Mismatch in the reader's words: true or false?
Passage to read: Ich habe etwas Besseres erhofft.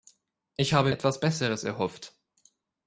false